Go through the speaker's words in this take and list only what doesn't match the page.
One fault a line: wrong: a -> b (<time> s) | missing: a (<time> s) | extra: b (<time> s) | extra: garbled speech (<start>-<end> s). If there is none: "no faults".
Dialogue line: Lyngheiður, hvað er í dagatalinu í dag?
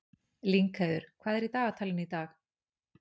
no faults